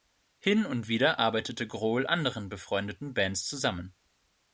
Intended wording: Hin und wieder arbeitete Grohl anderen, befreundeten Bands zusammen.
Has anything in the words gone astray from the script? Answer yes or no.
no